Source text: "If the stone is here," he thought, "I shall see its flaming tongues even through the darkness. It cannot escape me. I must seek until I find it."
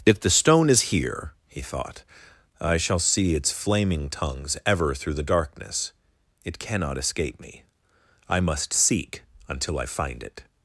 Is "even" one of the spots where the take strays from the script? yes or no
yes